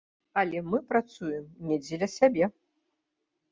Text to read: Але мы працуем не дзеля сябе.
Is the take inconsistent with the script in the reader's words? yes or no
no